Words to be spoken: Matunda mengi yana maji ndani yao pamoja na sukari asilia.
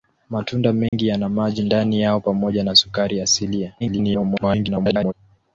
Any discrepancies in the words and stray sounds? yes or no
yes